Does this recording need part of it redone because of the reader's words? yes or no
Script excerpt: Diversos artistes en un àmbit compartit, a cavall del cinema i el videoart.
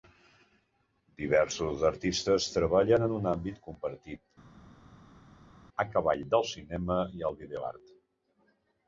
yes